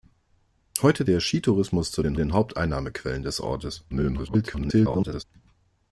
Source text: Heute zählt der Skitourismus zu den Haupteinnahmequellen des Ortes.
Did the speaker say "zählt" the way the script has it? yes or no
no